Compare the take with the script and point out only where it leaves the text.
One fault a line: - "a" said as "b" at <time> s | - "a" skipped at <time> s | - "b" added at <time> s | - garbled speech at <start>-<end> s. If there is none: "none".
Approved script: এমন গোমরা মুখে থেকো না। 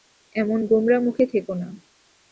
none